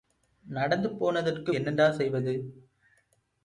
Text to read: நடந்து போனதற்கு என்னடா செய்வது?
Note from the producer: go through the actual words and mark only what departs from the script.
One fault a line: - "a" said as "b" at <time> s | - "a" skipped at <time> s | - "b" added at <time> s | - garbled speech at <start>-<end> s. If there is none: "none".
none